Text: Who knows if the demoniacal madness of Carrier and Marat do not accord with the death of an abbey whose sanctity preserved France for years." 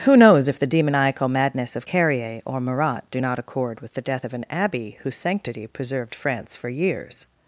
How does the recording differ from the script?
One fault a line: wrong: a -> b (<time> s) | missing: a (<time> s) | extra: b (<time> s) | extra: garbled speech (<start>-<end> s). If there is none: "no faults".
wrong: and -> or (2.4 s)